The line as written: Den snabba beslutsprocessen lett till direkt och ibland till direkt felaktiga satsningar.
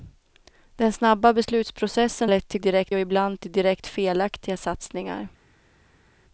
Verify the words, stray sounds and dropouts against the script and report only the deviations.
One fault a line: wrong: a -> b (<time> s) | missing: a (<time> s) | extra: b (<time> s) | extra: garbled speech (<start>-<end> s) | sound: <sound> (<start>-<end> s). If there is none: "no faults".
no faults